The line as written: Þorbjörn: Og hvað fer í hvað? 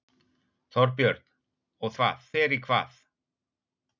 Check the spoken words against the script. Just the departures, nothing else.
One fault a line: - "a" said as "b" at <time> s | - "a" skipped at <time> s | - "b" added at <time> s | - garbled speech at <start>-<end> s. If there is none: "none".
none